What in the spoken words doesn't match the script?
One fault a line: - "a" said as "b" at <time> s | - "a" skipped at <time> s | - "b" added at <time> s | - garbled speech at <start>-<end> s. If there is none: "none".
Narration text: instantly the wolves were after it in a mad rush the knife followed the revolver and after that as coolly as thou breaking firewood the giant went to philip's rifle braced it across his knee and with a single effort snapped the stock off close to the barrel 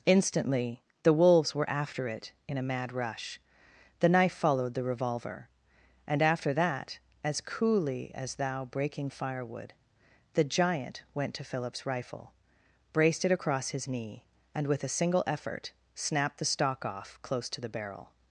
none